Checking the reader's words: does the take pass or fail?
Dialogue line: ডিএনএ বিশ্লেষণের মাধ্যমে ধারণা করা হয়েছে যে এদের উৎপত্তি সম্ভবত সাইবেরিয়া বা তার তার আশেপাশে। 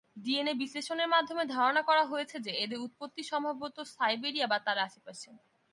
fail